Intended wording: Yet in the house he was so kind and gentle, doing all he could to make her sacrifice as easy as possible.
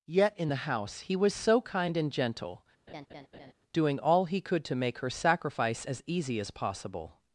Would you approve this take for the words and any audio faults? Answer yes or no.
no